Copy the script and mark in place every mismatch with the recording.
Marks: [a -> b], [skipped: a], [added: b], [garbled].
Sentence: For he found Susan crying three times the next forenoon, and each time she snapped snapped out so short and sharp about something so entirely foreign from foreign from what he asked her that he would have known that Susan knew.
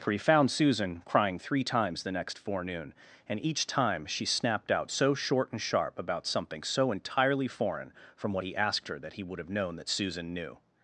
For he found Susan crying three times the next forenoon, and each time she snapped [skipped: snapped] out so short and sharp about something so entirely foreign from [skipped: foreign from] what he asked her that he would have known that Susan knew.